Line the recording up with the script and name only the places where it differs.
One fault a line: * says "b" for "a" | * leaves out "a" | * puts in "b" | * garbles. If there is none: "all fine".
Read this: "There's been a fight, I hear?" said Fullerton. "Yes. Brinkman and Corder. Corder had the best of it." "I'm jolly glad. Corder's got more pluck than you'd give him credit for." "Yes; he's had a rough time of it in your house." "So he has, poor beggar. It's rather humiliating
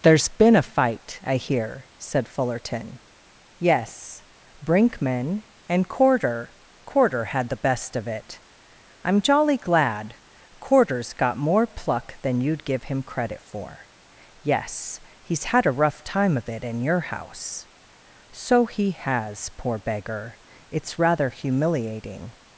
all fine